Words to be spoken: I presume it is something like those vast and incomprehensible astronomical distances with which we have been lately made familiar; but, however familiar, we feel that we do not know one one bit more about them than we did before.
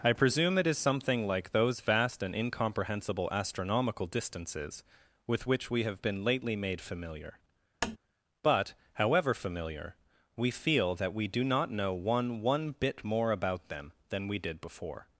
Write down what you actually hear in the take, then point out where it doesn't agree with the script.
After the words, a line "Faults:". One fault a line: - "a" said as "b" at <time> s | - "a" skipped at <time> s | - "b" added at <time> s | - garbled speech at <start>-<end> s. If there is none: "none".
I presume it is something like those vast and incomprehensible astronomical distances with which we have been lately made familiar; but, however familiar, we feel that we do not know one one bit more about them than we did before.
Faults:
none